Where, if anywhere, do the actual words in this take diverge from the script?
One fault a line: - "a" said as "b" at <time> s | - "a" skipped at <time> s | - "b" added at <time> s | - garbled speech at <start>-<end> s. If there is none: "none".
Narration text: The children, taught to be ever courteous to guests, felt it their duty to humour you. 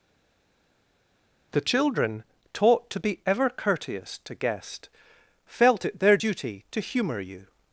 - "guests" said as "guest" at 4.3 s